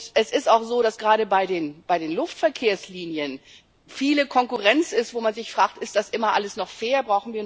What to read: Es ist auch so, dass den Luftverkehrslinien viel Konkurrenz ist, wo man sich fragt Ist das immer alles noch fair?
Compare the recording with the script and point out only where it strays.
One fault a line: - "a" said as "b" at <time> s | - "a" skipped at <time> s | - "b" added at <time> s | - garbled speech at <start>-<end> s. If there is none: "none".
- "gerade bei" added at 1.0 s